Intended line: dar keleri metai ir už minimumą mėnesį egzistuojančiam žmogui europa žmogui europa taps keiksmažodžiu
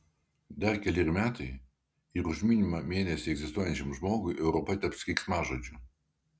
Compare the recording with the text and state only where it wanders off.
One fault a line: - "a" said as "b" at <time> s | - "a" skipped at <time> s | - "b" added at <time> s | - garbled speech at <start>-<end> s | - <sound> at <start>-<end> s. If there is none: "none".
- "žmogui europa" skipped at 4.8 s